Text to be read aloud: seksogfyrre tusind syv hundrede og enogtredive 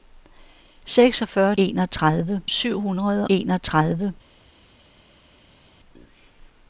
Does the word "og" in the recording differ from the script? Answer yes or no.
yes